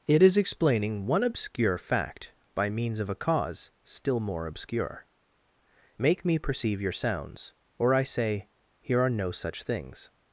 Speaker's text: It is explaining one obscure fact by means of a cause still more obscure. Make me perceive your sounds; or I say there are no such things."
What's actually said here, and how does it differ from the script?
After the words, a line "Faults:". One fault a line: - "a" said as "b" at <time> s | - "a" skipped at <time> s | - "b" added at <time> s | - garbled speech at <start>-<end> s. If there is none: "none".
It is explaining one obscure fact by means of a cause still more obscure. Make me perceive your sounds; or I say here are no such things."
Faults:
- "there" said as "here" at 8.8 s